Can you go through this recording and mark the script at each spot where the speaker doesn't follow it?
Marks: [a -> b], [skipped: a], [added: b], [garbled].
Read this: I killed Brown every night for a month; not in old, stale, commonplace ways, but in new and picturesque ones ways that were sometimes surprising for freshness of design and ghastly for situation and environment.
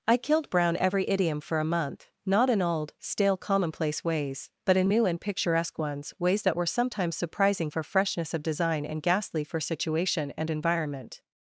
I killed Brown every [night -> idiom] for a month; not in old, stale, commonplace ways, but in new and picturesque ones ways that were sometimes surprising for freshness of design and ghastly for situation and environment.